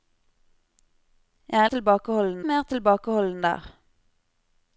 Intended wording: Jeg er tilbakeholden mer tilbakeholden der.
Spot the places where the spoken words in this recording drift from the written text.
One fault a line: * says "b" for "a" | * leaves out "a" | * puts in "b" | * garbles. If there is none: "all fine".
all fine